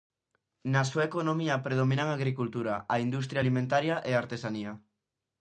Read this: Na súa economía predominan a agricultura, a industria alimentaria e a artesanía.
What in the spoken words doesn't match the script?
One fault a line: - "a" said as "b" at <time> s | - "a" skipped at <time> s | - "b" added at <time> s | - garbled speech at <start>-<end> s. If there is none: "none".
none